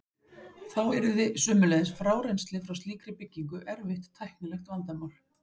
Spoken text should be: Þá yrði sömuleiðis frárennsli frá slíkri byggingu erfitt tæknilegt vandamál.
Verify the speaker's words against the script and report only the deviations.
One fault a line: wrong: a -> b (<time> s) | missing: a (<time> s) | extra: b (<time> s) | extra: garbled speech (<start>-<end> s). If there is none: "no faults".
no faults